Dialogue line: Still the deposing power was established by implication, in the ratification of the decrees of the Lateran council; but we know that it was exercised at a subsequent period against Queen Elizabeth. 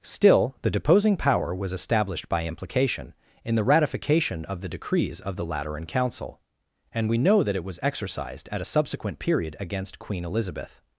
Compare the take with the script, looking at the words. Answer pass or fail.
fail